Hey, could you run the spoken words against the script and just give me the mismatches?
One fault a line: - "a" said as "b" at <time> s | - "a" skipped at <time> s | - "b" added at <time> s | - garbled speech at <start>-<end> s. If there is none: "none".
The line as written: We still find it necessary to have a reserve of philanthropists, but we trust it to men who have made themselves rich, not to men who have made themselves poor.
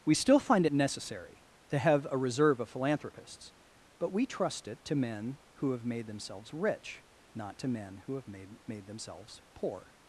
- "made" added at 8.7 s